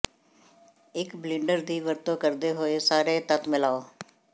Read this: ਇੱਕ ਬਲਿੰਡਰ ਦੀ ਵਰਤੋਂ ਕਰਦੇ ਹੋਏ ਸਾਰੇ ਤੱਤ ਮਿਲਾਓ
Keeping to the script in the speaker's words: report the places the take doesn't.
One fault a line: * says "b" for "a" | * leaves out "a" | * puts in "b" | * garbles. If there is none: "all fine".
all fine